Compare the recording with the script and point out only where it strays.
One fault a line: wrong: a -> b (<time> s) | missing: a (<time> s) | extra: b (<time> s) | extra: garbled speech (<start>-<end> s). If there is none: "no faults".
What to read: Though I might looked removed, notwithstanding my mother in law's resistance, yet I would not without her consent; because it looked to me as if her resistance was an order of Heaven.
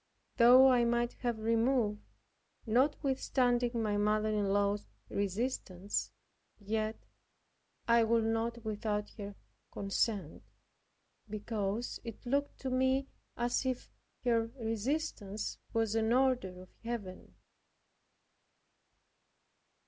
wrong: looked -> have (1.2 s)